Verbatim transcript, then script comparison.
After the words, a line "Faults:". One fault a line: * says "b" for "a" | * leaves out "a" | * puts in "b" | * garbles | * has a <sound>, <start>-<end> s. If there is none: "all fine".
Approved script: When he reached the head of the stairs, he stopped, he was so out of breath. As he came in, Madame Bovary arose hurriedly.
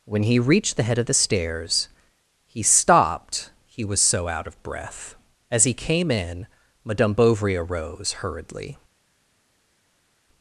When he reached the head of the stairs, he stopped, he was so out of breath. As he came in, Madame Bovary arose hurriedly.
Faults:
all fine